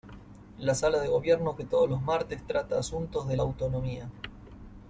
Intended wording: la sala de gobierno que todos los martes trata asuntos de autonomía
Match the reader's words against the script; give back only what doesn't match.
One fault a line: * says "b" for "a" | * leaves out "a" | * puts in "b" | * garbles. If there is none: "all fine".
all fine